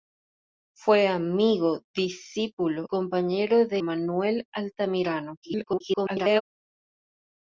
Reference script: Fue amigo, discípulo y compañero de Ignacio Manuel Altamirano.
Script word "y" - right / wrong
wrong